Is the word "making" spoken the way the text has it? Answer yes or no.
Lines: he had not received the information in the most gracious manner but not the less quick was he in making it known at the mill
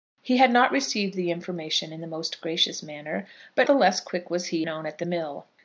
no